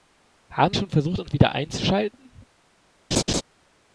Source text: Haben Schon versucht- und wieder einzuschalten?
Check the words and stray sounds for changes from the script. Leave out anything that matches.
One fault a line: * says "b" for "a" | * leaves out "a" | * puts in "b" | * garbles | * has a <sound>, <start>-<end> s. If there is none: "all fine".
* has a laugh, 3.1-3.4 s